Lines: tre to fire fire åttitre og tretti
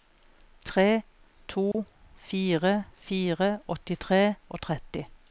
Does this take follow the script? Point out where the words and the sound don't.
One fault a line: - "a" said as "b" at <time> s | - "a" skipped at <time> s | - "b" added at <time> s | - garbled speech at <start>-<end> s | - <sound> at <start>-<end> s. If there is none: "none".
- dropout at 1.7-1.7 s